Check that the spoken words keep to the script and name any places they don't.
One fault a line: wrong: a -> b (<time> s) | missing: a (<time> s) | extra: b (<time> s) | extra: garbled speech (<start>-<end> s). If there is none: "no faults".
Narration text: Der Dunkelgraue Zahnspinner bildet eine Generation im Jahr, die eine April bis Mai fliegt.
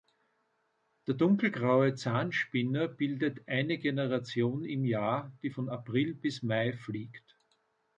wrong: eine -> von (5.5 s)